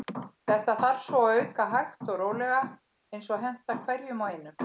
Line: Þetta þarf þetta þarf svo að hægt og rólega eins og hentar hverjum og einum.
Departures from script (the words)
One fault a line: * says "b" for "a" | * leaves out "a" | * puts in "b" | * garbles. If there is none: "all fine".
* leaves out "þetta þarf"
* puts in "auka"